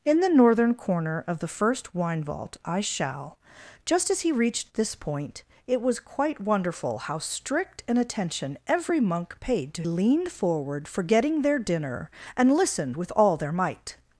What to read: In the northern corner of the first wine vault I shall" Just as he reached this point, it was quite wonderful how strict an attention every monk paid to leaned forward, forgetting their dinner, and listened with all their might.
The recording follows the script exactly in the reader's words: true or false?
true